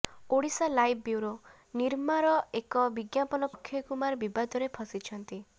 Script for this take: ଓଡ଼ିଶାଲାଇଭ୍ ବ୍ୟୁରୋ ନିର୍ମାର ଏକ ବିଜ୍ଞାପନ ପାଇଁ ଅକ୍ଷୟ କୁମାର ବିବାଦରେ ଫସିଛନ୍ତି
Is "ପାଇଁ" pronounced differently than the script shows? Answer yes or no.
yes